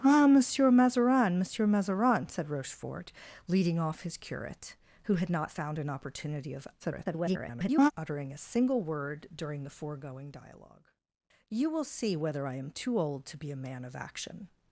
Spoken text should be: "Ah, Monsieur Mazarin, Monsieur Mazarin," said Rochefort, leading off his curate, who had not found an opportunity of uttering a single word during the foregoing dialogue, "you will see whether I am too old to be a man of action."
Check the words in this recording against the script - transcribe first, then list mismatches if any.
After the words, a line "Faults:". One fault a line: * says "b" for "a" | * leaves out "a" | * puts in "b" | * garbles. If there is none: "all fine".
"Ah, Monsieur Mazarin, Monsieur Mazarin," said Rochefort, leading off his curate, who had not found an opportunity of [garbled] uttering a single word during the foregoing dialogue, "you will see whether I am too old to be a man of action."
Faults:
* garbles